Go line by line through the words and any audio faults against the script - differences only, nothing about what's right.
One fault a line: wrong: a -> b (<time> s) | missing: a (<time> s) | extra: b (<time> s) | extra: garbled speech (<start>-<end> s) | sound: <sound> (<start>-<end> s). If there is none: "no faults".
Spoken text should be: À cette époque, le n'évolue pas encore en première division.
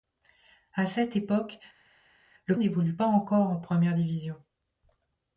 no faults